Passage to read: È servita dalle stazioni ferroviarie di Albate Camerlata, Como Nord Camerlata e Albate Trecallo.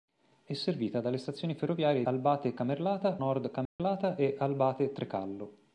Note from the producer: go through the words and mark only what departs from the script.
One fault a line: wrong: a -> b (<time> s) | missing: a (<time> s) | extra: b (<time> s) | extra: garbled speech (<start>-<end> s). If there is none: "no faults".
missing: di (2.1 s)
missing: Como (3.2 s)